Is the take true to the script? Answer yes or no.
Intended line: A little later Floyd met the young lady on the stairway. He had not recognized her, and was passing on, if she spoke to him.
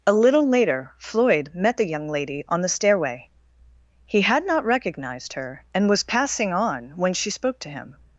no